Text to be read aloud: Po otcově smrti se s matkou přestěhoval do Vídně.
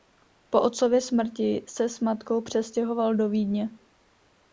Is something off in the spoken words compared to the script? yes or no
no